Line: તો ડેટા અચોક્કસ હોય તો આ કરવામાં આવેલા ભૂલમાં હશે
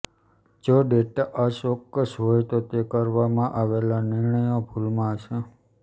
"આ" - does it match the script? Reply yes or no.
no